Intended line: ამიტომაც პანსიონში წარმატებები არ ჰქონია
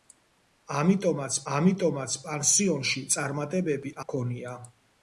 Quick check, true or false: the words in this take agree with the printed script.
false